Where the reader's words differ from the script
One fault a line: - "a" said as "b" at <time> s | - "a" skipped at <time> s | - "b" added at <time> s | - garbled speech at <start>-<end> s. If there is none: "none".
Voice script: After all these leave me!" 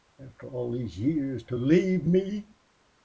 - "years to" added at 1.0 s